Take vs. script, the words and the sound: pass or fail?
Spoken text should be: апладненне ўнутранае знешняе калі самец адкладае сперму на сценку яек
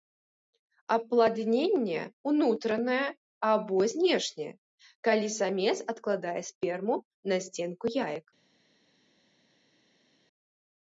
fail